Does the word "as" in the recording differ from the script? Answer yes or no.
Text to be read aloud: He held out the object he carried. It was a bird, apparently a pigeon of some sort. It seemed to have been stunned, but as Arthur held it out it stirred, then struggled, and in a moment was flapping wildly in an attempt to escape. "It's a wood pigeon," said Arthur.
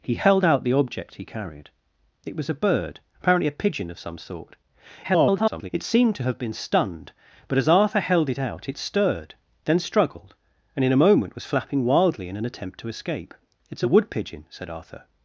no